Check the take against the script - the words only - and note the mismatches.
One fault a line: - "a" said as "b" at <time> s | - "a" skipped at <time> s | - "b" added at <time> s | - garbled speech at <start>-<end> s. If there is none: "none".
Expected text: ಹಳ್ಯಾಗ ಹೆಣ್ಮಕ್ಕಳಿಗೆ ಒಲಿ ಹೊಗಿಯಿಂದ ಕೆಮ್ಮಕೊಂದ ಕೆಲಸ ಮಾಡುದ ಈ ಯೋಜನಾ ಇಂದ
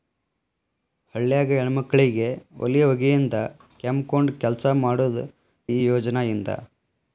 none